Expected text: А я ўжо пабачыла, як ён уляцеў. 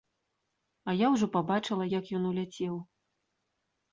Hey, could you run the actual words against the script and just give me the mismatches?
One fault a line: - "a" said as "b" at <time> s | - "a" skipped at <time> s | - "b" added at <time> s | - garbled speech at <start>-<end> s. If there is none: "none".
none